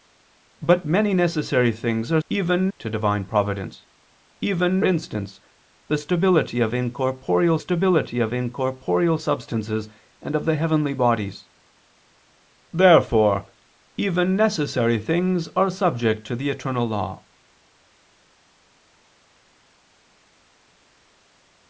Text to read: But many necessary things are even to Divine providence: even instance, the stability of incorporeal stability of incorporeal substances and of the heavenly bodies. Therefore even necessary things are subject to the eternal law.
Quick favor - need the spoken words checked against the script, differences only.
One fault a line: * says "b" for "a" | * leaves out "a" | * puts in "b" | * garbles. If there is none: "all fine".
all fine